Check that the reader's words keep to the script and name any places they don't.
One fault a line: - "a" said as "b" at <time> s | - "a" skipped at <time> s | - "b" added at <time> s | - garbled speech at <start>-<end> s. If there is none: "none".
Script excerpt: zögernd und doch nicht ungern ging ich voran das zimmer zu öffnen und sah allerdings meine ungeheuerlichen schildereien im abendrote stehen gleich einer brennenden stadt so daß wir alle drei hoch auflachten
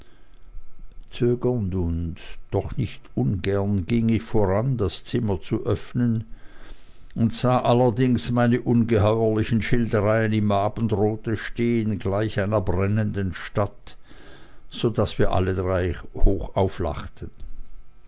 none